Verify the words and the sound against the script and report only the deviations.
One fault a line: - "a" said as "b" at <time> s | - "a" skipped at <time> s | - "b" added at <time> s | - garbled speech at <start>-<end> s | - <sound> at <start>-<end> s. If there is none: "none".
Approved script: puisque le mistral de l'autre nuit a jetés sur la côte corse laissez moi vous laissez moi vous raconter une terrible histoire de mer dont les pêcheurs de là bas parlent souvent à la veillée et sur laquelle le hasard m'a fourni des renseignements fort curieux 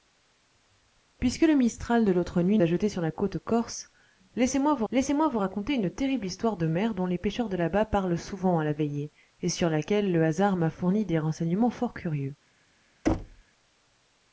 - thud at 13.0-13.4 s